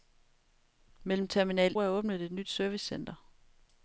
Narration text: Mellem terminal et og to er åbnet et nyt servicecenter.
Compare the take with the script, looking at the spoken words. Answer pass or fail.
fail